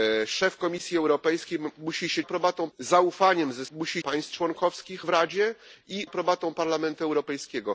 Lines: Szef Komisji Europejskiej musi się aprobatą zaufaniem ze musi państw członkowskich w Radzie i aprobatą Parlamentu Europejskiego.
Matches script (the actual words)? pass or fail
pass